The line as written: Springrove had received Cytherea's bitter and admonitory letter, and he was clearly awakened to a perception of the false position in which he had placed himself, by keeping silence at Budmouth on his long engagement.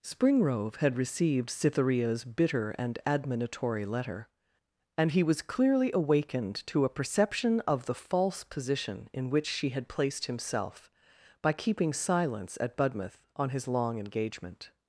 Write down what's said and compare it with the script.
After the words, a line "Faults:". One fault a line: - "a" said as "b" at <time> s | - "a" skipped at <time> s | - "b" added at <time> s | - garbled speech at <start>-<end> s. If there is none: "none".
Springrove had received Cytherea's bitter and admonitory letter, and he was clearly awakened to a perception of the false position in which she had placed himself, by keeping silence at Budmouth on his long engagement.
Faults:
- "he" said as "she" at 9.5 s